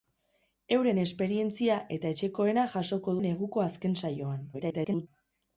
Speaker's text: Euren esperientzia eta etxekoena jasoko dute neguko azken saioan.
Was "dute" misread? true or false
true